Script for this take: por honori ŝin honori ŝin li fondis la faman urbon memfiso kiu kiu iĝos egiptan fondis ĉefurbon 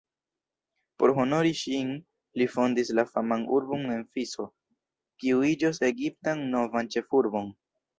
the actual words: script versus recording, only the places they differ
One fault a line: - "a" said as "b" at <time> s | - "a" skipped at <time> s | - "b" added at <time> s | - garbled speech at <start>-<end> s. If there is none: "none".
- "honori ŝin" skipped at 1.9 s
- "kiu" skipped at 5.5 s
- "fondis" said as "novan" at 6.6 s